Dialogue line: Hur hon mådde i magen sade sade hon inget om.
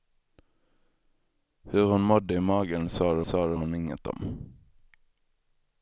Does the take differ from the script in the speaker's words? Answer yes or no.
no